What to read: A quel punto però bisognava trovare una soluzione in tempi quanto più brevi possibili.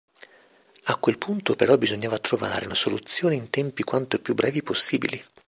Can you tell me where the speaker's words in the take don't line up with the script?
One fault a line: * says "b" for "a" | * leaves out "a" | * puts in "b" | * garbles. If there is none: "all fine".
all fine